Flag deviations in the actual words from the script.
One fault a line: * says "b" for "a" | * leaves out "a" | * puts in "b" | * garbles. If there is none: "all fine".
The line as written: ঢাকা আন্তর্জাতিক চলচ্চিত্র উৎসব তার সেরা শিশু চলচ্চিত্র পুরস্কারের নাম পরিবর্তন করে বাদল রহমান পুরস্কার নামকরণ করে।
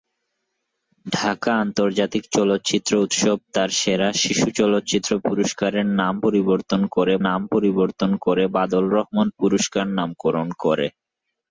* puts in "নাম পরিবর্তন করে"